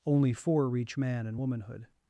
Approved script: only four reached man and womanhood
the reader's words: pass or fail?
fail